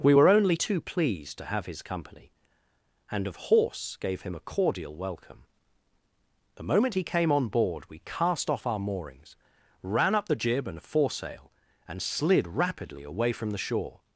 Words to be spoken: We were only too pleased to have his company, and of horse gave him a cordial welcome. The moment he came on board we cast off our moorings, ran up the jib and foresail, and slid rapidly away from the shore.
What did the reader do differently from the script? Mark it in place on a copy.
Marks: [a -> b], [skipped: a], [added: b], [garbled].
We were only too pleased to have his company, and of horse gave him a cordial welcome. The moment he came on board we cast off our moorings, ran up the jib and foresail, and slid rapidly away from the shore.